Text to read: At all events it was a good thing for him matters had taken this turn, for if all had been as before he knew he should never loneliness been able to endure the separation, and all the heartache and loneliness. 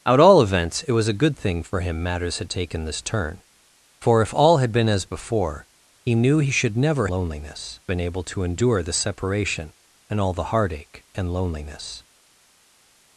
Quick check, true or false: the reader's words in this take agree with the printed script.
true